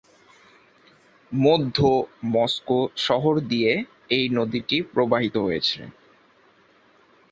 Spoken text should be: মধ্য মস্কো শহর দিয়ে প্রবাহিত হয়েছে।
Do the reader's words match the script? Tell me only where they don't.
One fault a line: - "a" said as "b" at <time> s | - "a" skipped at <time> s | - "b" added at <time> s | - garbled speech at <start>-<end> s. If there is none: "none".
- "এই নদীটি" added at 4.1 s